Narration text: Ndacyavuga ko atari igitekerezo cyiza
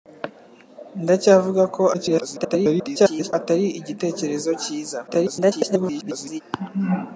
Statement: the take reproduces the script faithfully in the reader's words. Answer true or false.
false